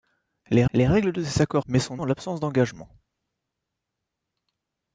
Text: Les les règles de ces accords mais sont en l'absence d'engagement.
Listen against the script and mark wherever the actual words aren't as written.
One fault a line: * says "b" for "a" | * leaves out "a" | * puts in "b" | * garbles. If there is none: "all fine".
all fine